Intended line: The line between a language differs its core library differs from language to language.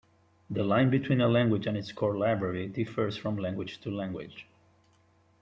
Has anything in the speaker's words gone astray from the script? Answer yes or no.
yes